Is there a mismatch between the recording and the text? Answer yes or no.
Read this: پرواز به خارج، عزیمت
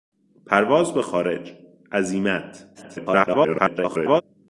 yes